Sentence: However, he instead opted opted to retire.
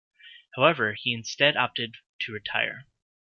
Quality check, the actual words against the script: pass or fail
fail